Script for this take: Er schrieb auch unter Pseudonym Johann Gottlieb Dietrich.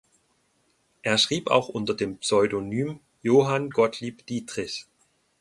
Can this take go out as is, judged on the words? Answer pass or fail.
fail